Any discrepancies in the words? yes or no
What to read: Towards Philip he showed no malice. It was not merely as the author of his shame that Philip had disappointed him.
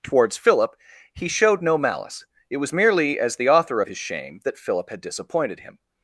yes